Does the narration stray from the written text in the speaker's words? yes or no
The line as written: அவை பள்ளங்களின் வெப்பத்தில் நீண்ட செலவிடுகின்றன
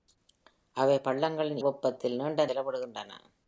no